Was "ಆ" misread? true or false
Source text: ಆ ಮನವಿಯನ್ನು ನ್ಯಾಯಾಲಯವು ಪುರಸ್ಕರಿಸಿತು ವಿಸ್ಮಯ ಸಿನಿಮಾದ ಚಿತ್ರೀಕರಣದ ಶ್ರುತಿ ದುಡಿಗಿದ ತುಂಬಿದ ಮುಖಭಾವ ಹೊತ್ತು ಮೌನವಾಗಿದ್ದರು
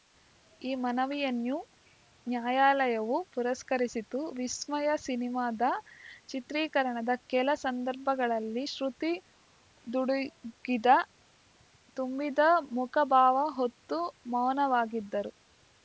true